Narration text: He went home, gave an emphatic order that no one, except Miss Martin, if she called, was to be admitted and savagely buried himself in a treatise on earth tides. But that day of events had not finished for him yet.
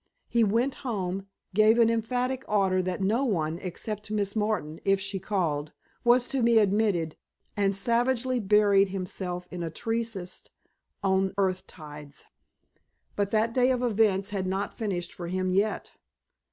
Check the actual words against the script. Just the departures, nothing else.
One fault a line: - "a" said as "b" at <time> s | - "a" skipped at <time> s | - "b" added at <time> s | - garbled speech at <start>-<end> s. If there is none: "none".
none